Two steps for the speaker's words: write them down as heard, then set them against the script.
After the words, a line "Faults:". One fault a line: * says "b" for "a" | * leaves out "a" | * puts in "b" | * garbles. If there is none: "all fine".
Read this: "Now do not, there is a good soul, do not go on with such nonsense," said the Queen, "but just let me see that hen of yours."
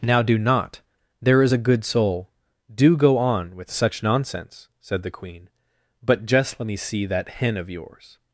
"Now do not, there is a good soul, do go on with such nonsense," said the Queen, "but just let me see that hen of yours."
Faults:
* leaves out "not"